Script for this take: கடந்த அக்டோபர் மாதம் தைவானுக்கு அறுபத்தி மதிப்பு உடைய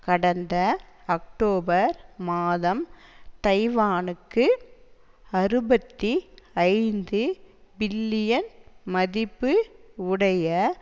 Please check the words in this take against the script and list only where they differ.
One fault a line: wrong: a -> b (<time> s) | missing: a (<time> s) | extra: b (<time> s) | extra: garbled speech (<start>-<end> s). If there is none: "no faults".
extra: ஐந்து பில்லியன் (6.7 s)